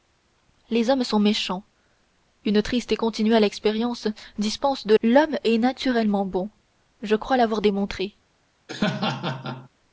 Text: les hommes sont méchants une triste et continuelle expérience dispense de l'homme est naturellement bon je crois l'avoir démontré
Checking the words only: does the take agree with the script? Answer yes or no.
yes